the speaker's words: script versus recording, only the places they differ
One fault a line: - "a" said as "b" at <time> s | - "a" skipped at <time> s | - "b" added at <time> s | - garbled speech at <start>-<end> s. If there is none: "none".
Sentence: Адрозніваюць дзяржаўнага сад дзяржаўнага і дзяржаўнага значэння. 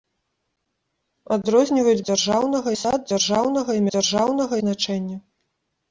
none